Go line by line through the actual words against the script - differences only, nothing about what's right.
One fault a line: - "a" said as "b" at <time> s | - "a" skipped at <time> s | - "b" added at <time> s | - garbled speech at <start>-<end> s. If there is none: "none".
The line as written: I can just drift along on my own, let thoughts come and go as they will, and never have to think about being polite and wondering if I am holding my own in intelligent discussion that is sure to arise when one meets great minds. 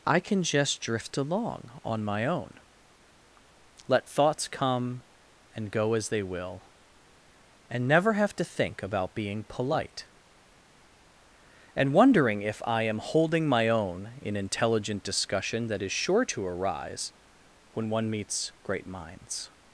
none